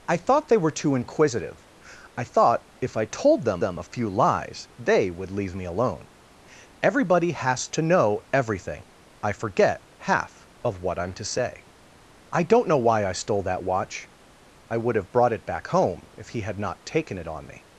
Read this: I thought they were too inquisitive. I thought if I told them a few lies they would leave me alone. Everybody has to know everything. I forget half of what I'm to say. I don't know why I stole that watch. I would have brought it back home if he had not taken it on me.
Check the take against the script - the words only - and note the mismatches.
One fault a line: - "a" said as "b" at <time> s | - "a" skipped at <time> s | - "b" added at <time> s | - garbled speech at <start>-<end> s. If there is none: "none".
- "them" added at 3.6 s